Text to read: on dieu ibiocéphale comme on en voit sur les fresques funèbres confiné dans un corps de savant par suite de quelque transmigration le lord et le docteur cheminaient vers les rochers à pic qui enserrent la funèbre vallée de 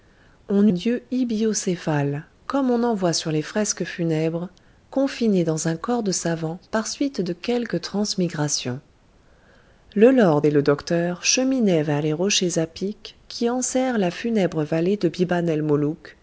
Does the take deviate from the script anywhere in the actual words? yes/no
no